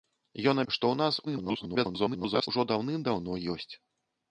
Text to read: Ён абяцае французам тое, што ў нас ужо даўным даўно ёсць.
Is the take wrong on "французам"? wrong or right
wrong